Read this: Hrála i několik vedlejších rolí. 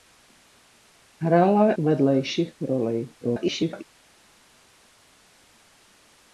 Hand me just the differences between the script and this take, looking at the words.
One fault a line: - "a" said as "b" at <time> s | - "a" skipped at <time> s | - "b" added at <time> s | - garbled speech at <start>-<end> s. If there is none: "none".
- "i několik" skipped at 1.7 s
- garbled speech at 3.2-3.8 s